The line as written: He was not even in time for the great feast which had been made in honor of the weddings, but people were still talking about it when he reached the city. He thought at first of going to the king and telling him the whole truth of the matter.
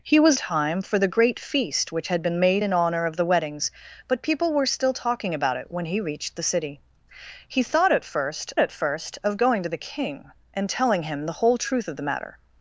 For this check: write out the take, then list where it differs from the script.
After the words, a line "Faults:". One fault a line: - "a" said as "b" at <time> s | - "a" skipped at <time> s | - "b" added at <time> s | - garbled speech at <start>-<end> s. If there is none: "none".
He was time for the great feast which had been made in honor of the weddings, but people were still talking about it when he reached the city. He thought at first at first of going to the king and telling him the whole truth of the matter.
Faults:
- "not even in" skipped at 0.4 s
- "at first" added at 8.6 s